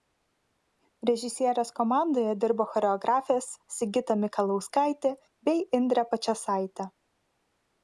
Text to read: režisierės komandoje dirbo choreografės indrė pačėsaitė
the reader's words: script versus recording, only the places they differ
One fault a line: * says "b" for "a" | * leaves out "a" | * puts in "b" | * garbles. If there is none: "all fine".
* puts in "sigita mikalauskaitė bei"